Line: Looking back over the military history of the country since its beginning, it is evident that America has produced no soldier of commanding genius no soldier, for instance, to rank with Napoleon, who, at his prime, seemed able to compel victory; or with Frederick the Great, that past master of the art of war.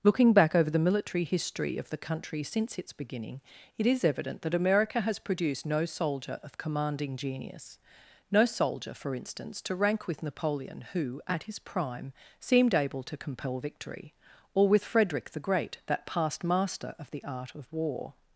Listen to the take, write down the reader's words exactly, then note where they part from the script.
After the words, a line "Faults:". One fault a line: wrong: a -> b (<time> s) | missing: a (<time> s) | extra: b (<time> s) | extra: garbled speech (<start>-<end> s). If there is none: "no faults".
Looking back over the military history of the country since its beginning, it is evident that America has produced no soldier of commanding genius no soldier, for instance, to rank with Napoleon, who, at his prime, seemed able to compel victory; or with Frederick the Great, that past master of the art of war.
Faults:
no faults